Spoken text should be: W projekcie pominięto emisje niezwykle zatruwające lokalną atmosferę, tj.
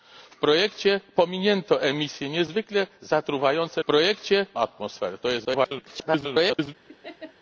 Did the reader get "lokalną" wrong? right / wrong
wrong